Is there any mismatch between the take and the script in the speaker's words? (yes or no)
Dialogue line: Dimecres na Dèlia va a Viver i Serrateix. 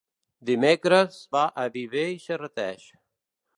yes